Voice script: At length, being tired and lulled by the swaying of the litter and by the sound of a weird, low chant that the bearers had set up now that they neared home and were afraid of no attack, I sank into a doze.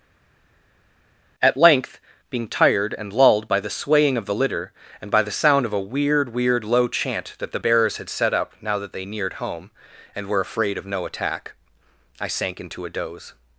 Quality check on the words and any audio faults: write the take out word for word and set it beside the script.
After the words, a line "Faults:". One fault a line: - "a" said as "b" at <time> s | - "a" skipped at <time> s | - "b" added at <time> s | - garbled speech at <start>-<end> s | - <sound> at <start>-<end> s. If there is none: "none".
At length, being tired and lulled by the swaying of the litter and by the sound of a weird weird, low chant that the bearers had set up now that they neared home and were afraid of no attack, I sank into a doze.
Faults:
- "weird" added at 6.3 s